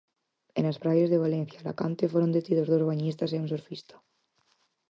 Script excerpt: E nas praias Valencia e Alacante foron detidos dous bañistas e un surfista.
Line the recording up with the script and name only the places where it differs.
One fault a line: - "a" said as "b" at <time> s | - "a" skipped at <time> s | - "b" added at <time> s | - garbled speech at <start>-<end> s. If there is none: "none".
- "de" added at 1.1 s